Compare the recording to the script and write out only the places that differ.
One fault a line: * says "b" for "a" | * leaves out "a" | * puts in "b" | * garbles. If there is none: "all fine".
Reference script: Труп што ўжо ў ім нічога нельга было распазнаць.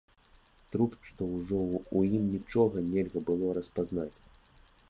all fine